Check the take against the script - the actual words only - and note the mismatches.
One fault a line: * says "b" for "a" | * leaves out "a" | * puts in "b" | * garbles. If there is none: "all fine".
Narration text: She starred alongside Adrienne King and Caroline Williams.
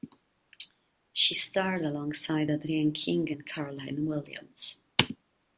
all fine